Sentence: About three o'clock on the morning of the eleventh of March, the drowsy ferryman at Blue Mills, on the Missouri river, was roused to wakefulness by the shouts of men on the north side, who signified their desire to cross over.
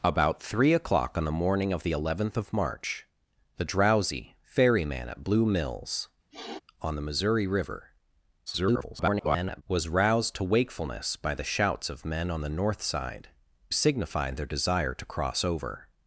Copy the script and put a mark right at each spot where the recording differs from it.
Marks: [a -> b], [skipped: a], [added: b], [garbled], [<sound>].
About three o'clock on the morning of the eleventh of March, the drowsy ferryman at Blue Mills, [sniff] on the Missouri river, [garbled] was roused to wakefulness by the shouts of men on the north side, [skipped: who] signified their desire to cross over.